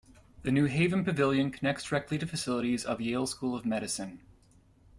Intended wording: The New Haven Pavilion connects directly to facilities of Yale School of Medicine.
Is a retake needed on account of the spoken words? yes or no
no